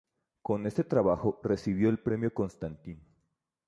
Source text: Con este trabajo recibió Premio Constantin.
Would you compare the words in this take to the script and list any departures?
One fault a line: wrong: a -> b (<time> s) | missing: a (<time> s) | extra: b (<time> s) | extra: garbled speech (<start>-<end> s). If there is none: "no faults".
extra: el (1.9 s)